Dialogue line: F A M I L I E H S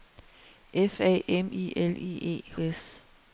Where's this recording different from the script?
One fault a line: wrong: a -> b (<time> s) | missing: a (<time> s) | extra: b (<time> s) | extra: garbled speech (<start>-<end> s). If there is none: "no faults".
no faults